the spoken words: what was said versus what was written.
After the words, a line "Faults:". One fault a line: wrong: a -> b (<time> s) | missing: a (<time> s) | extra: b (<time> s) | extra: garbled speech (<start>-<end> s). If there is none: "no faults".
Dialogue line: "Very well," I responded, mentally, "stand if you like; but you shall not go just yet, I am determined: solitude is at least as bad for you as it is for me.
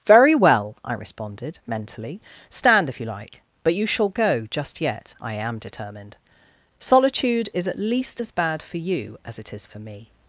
"Very well," I responded, mentally, "stand if you like; but you shall go just yet, I am determined: solitude is at least as bad for you as it is for me.
Faults:
missing: not (4.1 s)